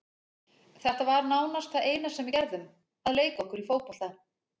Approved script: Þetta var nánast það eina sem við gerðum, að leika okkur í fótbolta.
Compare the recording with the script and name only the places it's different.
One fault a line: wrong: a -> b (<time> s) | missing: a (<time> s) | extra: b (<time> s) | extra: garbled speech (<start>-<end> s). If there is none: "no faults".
no faults